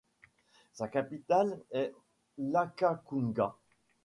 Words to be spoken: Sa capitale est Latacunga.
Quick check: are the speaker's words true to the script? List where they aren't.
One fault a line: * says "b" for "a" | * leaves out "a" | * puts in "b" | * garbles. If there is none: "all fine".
all fine